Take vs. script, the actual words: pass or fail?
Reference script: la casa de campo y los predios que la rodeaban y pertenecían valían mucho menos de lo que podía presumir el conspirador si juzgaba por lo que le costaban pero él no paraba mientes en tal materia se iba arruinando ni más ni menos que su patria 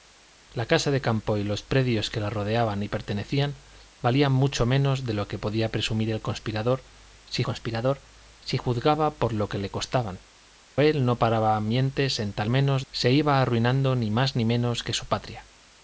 fail